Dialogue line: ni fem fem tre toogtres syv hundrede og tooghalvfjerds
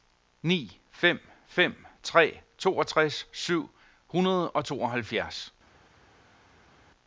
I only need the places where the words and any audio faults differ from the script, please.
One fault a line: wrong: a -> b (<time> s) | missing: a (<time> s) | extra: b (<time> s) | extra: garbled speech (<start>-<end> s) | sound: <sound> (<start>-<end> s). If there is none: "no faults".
no faults